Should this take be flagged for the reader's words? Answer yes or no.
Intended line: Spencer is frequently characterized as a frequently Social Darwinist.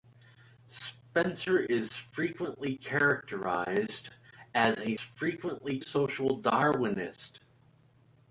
no